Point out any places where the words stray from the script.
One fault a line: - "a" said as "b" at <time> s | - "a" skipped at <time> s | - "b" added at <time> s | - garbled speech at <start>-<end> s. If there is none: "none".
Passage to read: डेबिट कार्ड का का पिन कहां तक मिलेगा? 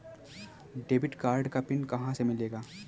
- "का" skipped at 1.6 s
- "तक" said as "से" at 2.1 s